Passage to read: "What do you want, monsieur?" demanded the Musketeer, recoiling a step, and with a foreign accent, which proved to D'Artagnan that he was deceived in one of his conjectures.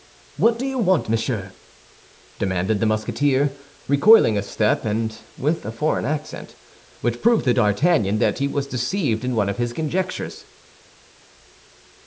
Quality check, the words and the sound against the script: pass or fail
pass